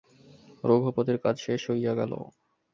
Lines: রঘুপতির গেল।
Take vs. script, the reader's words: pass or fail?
fail